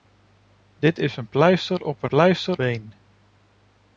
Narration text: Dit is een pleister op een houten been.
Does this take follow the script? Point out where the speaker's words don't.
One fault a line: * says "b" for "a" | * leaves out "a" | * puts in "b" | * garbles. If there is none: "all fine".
* says "pleister" for "houten"